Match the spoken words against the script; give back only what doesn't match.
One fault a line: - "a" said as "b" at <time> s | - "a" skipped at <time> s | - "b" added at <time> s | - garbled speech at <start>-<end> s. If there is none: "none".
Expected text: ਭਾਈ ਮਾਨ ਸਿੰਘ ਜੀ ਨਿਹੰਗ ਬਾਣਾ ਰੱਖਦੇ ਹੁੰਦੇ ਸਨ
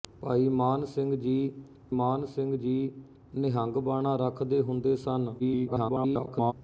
- "ਮਾਨ ਸਿੰਘ ਜੀ" added at 1.9 s
- garbled speech at 5.4-6.5 s